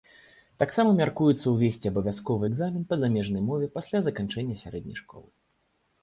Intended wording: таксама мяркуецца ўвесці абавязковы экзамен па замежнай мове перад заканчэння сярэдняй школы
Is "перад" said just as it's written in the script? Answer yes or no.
no